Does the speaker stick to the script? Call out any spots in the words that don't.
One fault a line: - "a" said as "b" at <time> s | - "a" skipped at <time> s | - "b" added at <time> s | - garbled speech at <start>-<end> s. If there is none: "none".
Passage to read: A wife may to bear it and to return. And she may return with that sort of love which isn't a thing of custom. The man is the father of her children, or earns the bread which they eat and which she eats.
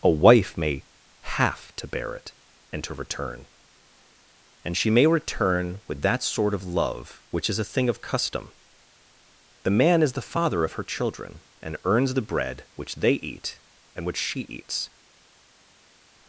- "have" added at 1.4 s
- "isn't" said as "is" at 7.5 s
- "or" said as "and" at 11.6 s